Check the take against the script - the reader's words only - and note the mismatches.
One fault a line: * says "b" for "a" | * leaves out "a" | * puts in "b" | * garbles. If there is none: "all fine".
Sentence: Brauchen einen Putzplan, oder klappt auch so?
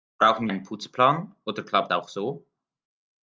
all fine